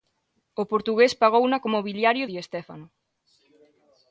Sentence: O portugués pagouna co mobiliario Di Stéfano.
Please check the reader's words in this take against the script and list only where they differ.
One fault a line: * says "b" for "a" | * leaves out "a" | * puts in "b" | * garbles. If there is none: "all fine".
all fine